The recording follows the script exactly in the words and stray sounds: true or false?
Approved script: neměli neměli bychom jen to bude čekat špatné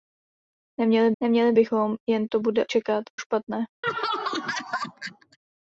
false